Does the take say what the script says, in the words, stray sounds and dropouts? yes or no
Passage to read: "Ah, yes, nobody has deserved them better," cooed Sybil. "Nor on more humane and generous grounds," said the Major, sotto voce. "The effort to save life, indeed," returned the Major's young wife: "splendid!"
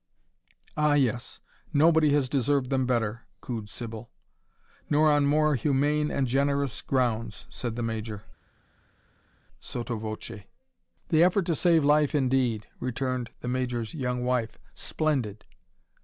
yes